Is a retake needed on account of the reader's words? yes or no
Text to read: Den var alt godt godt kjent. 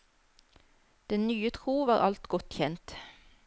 yes